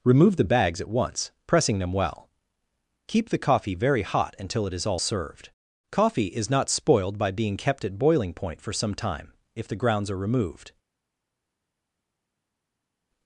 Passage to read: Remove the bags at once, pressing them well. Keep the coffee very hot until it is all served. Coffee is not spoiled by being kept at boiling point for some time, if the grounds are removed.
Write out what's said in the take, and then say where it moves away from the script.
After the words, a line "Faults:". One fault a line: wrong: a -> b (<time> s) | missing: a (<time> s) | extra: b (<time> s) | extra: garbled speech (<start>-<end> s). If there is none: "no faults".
Remove the bags at once, pressing them well. Keep the coffee very hot until it is all served. Coffee is not spoiled by being kept at boiling point for some time, if the grounds are removed.
Faults:
no faults